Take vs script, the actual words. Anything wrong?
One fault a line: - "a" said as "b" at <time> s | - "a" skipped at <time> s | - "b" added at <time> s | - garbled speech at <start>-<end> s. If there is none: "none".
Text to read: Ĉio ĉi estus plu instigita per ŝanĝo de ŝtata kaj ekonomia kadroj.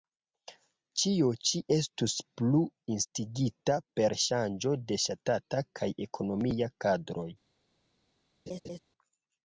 none